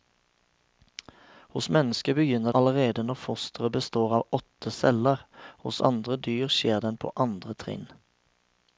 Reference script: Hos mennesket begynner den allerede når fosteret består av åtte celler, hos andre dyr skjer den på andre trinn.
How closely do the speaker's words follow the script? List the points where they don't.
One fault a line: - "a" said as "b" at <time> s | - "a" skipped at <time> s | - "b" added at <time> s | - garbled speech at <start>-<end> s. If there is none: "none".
- "den" skipped at 2.5 s